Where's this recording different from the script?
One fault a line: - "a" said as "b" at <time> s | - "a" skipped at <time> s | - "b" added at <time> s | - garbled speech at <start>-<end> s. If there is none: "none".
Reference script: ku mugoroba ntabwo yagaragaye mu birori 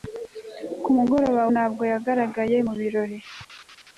none